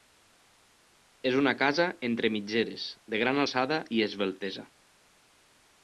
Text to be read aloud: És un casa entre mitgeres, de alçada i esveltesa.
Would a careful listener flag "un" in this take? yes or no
yes